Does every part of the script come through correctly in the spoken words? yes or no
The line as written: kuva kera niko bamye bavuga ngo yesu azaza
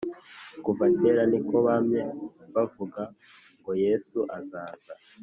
yes